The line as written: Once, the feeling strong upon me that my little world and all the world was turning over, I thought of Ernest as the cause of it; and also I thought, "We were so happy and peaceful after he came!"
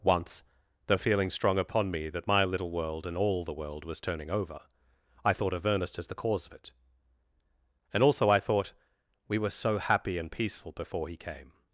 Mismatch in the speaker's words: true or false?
true